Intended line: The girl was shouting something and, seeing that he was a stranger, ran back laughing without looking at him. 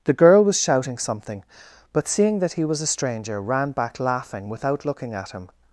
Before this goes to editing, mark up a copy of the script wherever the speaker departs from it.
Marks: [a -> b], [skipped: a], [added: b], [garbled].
The girl was shouting something [and, -> but] seeing that he was a stranger, ran back laughing without looking at him.